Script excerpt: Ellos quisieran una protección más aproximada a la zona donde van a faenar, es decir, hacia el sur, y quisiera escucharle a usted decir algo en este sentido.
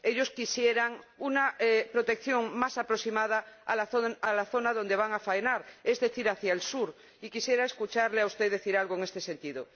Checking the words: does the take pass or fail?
pass